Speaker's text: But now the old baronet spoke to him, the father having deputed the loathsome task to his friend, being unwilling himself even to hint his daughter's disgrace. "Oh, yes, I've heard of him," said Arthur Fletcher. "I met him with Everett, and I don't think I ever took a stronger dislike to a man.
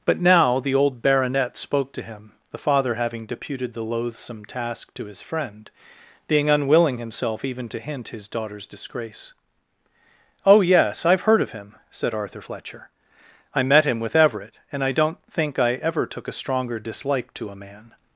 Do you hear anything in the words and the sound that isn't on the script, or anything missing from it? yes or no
no